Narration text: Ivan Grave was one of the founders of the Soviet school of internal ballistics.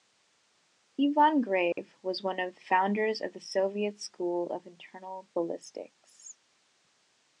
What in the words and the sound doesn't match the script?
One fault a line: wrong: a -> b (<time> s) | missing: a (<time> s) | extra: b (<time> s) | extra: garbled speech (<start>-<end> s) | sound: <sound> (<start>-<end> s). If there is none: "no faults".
sound: dropout (1.7-1.8 s)